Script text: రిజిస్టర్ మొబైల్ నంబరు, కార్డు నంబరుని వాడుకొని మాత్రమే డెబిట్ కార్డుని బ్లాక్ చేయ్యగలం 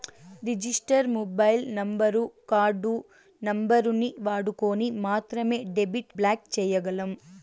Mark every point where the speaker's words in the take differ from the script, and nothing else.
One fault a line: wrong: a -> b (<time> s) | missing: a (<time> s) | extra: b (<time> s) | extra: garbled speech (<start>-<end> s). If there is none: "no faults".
missing: కార్డుని (6.1 s)